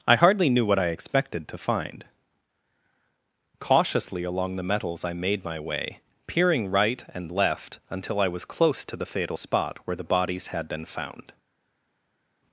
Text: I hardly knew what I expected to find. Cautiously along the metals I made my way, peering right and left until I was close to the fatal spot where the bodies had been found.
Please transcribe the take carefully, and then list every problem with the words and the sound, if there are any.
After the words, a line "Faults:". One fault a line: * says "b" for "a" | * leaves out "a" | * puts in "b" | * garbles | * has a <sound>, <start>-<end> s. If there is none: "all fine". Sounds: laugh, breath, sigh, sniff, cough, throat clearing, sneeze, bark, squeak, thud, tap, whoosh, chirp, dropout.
I hardly knew what I expected to find. Cautiously along the metals I made my way, peering right and left until I was close to the fatal spot where the bodies had been found.
Faults:
all fine